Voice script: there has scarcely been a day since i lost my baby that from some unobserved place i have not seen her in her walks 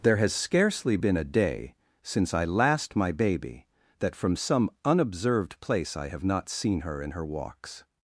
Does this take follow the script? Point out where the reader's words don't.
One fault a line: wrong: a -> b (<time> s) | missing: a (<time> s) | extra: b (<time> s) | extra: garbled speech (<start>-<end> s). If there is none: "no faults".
wrong: lost -> last (2.5 s)